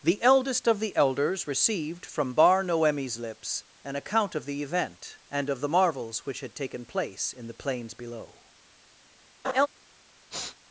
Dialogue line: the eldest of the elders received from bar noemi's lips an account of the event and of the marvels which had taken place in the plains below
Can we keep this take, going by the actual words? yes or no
yes